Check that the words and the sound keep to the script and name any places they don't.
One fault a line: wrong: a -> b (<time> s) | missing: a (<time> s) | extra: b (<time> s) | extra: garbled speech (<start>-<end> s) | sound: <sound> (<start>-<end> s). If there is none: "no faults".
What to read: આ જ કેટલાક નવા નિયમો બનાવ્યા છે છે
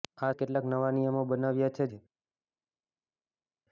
no faults